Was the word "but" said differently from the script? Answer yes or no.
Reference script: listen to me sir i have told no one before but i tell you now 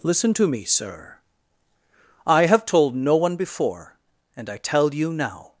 yes